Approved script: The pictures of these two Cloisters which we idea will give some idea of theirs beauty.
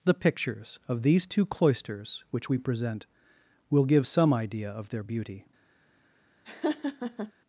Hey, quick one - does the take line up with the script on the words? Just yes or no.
no